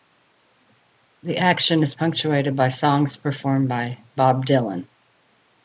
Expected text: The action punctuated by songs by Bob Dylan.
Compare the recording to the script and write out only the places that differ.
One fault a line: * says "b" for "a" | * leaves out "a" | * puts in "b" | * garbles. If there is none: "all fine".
* puts in "is"
* puts in "performed"